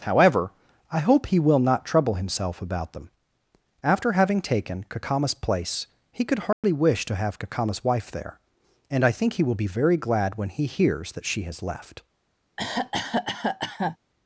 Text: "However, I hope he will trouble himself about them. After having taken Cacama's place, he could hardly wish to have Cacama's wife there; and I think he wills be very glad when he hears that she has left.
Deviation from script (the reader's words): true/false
true